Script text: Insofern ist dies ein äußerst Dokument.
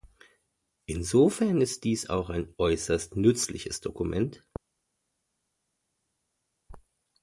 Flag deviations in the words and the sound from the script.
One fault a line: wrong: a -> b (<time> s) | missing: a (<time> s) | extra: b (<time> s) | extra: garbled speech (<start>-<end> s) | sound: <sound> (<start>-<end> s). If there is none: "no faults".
extra: auch (2.1 s)
extra: nützliches (3.2 s)